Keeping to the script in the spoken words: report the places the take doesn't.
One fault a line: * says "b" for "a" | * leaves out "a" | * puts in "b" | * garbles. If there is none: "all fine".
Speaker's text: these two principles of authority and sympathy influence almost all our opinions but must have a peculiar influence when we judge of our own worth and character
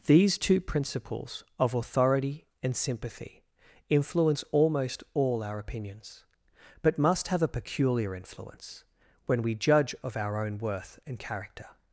all fine